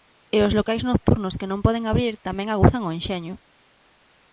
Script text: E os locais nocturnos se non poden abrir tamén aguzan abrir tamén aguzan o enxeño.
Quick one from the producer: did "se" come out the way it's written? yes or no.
no